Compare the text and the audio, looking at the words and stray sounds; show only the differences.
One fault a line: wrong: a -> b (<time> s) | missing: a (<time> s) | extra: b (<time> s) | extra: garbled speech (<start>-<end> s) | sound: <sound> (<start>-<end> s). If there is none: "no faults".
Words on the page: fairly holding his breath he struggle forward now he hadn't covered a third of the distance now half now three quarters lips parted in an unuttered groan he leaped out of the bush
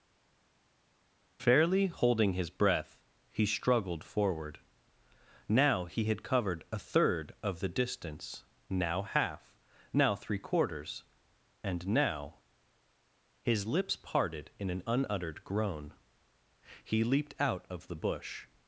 wrong: struggle -> struggled (3.5 s)
wrong: hadn't -> had (6.0 s)
extra: and now his (11.6 s)